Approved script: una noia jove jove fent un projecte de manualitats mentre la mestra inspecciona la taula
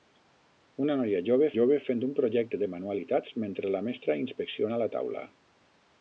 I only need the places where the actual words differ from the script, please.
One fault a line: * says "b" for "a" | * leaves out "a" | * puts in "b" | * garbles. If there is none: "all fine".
all fine